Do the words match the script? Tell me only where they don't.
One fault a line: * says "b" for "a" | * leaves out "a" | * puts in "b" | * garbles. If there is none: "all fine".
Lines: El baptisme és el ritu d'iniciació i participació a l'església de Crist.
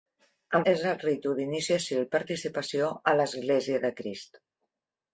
* leaves out "baptisme"